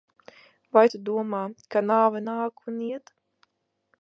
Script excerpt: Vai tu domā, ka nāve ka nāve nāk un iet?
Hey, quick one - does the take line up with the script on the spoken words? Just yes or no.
no